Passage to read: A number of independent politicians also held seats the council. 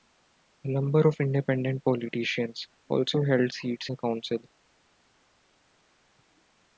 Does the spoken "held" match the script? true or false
true